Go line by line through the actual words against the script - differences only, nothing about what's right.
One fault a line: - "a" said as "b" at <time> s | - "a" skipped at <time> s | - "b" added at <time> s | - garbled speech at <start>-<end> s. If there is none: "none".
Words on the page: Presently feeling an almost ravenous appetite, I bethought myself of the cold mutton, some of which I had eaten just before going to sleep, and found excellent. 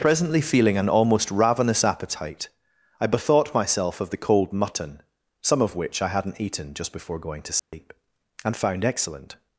- "had" said as "hadn't" at 6.1 s